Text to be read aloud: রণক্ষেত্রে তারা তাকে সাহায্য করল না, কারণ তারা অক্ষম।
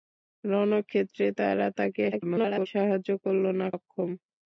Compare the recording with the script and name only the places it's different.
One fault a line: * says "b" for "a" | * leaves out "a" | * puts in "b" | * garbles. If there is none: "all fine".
* garbles
* leaves out "কারণ তারা"